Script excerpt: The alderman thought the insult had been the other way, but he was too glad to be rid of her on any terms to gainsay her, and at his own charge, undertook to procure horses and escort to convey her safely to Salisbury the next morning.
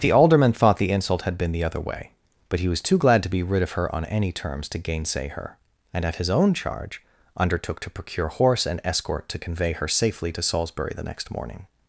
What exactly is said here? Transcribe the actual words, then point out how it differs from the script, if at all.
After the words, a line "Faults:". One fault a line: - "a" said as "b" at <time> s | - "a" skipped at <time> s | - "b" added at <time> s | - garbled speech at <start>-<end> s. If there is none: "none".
The alderman thought the insult had been the other way, but he was too glad to be rid of her on any terms to gainsay her, and at his own charge, undertook to procure horse and escort to convey her safely to Salisbury the next morning.
Faults:
- "horses" said as "horse" at 8.3 s